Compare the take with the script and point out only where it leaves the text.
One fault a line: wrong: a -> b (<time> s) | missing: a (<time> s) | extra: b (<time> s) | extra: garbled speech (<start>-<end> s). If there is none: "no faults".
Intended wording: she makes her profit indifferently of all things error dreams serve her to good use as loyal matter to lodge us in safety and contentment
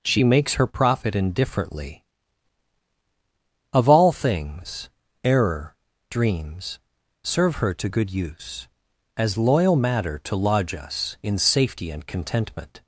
no faults